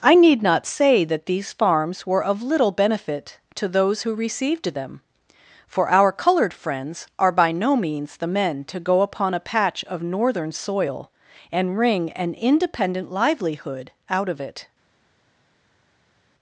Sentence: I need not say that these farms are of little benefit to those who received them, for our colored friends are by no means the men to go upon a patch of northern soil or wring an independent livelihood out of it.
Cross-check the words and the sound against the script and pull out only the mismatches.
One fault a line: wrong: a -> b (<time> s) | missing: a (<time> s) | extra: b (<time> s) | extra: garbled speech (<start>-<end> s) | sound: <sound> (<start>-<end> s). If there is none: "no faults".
wrong: are -> were (2.1 s)
wrong: or -> and (11.5 s)